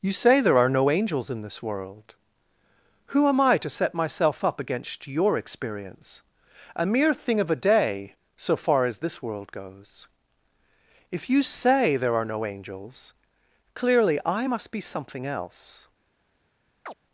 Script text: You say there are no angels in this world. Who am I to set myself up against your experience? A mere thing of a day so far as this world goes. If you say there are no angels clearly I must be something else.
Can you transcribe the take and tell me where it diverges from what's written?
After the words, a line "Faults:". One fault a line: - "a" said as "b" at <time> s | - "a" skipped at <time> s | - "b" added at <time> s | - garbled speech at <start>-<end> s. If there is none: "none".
You say there are no angels in this world. Who am I to set myself up against your experience? A mere thing of a day so far as this world goes. If you say there are no angels clearly I must be something else.
Faults:
none